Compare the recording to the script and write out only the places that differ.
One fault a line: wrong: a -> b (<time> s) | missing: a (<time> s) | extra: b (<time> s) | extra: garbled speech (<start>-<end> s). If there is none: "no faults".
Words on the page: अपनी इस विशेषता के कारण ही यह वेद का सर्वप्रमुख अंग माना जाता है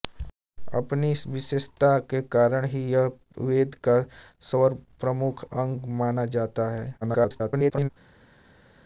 extra: garbled speech (7.0-7.9 s)